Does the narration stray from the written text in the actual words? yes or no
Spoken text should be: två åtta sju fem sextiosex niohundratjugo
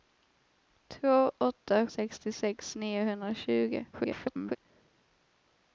yes